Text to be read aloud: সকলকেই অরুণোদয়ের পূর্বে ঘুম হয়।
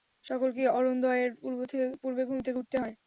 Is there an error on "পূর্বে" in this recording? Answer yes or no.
no